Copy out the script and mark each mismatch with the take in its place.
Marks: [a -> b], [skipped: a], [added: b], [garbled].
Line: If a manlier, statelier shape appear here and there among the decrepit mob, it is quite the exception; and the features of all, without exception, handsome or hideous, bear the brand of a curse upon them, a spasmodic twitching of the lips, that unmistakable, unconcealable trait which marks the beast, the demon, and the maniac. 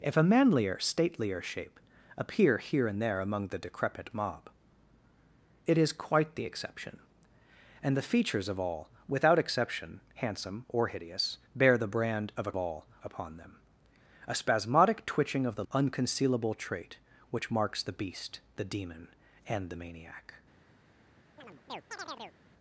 If a manlier, statelier shape appear here and there among the decrepit mob, it is quite the exception; and the features of all, without exception, handsome or hideous, bear the brand of a [curse -> all] upon them, a spasmodic twitching of the [skipped: lips, that unmistakable,] unconcealable trait which marks the beast, the demon, and the maniac.